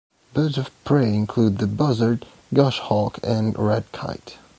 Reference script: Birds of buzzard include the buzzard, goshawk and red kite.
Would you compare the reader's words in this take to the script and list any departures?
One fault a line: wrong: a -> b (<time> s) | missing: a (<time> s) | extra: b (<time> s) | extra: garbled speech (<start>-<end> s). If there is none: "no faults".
wrong: buzzard -> prey (0.8 s)